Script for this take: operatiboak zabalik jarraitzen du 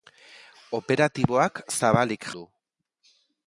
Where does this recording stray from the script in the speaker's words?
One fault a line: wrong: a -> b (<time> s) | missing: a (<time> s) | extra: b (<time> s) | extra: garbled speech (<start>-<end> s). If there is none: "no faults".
missing: jarraitzen (2.3 s)